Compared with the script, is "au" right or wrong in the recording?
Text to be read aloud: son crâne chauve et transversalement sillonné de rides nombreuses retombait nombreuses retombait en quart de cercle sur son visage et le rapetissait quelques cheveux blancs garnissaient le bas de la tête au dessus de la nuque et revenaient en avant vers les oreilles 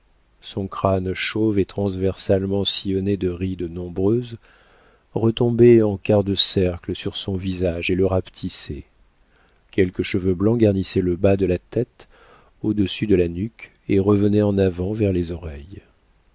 right